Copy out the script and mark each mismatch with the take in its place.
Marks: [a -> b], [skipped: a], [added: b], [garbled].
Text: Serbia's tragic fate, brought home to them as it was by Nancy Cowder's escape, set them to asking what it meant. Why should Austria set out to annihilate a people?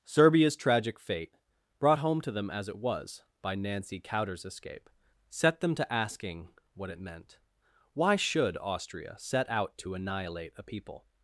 Serbia's tragic fate, brought home to them as it was by Nancy Cowder's escape, set them to asking what it meant. Why should Austria set out to annihilate a people?